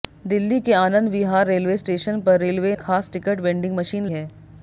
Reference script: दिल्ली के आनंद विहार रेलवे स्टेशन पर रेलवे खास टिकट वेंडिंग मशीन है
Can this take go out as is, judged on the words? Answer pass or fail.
pass